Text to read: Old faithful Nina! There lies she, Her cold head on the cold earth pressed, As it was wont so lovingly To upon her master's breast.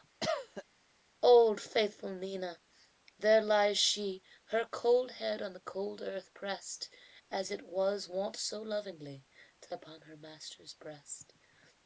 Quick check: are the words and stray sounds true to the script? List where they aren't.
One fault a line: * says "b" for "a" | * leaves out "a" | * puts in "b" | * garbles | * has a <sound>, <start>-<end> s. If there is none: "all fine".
* has a cough, 0.2-0.6 s